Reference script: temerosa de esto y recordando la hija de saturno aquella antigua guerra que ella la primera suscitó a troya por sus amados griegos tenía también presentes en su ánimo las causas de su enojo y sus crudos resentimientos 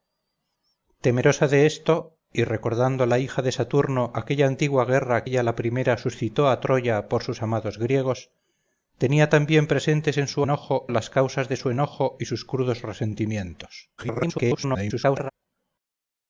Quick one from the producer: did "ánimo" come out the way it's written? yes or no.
no